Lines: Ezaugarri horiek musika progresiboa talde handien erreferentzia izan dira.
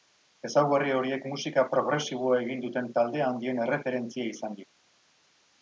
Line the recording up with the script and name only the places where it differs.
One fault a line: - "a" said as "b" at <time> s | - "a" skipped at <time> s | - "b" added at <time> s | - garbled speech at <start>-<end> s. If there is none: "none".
- "egin duten" added at 2.5 s